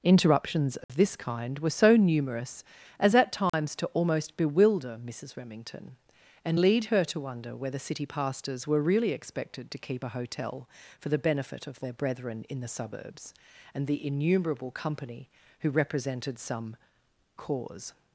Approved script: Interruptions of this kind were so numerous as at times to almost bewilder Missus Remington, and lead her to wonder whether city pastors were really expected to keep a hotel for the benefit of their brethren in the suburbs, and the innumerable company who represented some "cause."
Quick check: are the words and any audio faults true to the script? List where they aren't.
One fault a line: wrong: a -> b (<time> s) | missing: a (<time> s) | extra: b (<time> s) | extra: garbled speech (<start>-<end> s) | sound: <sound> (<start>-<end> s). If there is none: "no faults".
sound: dropout (0.8-0.9 s)
sound: dropout (3.5-3.5 s)